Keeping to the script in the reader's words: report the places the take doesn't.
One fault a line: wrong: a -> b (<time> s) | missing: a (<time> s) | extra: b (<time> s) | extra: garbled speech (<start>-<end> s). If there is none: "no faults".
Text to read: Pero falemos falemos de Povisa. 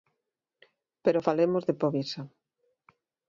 missing: falemos (1.6 s)